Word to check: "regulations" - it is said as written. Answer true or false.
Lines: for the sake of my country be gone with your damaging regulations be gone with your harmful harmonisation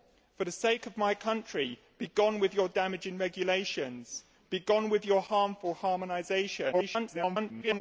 true